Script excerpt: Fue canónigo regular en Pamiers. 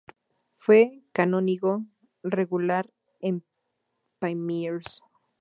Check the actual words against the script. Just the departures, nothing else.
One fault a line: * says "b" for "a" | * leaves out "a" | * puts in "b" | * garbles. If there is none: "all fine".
all fine